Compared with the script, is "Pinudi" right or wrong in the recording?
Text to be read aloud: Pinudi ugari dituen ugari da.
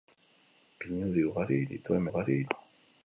right